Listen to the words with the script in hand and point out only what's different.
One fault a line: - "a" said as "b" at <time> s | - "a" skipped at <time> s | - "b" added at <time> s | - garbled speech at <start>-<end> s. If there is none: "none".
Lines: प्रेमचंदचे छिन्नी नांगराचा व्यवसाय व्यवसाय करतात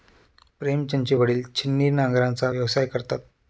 - "वडील" added at 1.1 s
- "व्यवसाय" skipped at 2.9 s